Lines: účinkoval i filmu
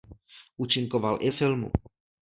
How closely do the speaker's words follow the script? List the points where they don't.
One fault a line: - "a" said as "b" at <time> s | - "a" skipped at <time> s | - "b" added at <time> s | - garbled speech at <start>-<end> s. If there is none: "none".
none